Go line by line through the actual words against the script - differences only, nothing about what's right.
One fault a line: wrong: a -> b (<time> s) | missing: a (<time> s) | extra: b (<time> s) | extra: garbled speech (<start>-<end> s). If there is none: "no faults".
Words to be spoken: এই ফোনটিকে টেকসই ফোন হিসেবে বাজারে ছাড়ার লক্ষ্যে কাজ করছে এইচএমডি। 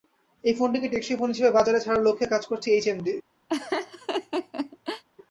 no faults